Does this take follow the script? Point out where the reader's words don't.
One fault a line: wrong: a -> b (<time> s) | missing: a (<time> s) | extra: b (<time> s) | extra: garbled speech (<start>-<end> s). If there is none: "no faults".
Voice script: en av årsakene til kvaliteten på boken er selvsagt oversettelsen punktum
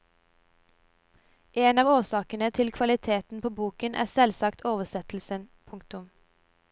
no faults